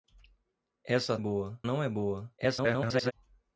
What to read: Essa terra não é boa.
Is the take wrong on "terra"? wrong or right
wrong